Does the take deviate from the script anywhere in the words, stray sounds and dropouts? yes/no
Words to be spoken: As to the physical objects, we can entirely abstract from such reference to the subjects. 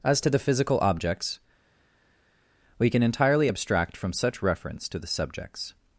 no